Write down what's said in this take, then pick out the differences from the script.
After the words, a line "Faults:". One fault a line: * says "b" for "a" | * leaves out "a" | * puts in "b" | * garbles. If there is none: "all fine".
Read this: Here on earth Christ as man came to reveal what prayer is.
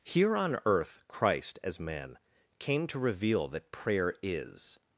Here on earth Christ as man came to reveal that prayer is.
Faults:
* says "that" for "what"